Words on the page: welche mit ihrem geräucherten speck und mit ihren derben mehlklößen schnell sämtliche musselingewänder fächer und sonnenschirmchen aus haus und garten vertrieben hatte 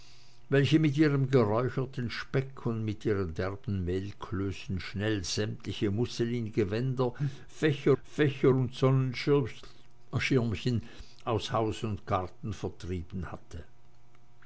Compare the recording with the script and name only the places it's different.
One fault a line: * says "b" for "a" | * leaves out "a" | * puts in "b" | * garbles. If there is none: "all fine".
* puts in "fächer"